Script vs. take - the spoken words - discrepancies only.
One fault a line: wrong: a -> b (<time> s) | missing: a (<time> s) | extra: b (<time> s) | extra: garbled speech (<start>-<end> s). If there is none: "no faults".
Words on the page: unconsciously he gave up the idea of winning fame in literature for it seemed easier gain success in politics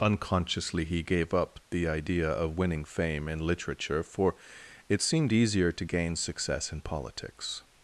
extra: to (5.7 s)